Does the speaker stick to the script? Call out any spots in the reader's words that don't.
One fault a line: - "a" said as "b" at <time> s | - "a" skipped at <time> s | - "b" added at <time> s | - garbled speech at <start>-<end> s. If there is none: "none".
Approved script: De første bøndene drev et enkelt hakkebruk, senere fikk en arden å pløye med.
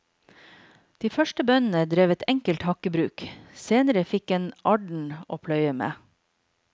none